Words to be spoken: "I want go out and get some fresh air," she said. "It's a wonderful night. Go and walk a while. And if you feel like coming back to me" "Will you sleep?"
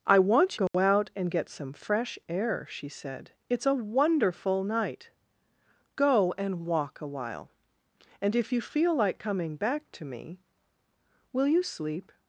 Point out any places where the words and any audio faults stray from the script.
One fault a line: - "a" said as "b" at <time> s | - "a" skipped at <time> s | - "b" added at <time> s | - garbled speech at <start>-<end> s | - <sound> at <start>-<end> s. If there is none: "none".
- dropout at 0.7-0.7 s